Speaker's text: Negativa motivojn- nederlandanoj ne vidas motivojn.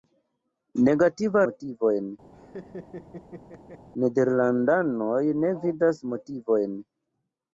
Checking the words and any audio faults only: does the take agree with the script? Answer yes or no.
no